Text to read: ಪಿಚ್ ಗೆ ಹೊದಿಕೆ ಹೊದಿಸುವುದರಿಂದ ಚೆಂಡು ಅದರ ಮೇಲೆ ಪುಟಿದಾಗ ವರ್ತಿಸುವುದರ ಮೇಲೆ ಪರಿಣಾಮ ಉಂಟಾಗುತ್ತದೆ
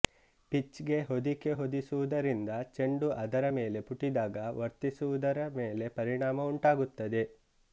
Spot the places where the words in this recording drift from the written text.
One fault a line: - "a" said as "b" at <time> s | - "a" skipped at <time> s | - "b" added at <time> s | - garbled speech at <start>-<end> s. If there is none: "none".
none